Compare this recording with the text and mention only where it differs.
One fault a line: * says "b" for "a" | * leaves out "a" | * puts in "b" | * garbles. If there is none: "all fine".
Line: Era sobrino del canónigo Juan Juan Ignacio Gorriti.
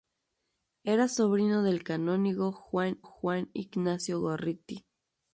all fine